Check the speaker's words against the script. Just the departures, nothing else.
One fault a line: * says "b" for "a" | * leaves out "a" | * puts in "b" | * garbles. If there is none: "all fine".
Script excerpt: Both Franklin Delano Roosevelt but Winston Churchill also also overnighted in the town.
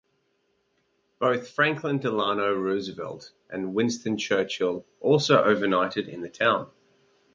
* says "and" for "but"
* leaves out "also"